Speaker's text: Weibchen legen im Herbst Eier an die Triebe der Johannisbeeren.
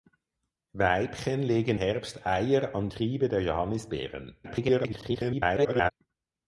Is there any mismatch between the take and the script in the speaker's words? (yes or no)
yes